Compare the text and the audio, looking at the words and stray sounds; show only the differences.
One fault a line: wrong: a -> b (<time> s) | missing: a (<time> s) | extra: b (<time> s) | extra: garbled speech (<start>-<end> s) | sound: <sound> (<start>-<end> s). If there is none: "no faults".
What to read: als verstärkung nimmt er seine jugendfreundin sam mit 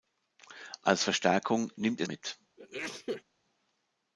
missing: seine jugendfreundin sam (2.1 s)
sound: sneeze (2.6-3.2 s)